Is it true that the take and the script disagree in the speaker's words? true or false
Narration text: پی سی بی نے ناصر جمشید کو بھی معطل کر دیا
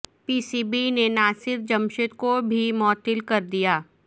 false